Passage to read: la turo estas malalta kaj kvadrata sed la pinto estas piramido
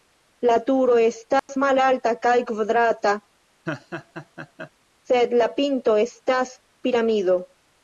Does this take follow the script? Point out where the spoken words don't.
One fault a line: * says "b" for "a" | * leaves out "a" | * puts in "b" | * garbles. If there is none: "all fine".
all fine